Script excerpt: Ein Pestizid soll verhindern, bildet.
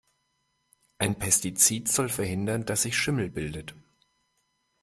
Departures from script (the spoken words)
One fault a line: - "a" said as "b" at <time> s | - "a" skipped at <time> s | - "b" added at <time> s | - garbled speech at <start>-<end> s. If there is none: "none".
- "dass sich Schimmel" added at 2.6 s